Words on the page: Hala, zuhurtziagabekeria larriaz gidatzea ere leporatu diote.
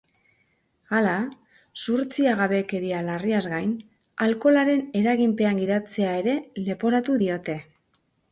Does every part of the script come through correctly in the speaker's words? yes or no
no